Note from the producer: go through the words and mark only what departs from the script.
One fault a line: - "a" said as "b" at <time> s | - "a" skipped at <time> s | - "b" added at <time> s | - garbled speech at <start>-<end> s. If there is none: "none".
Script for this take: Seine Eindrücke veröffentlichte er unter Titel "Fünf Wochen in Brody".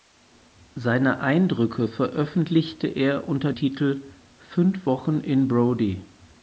none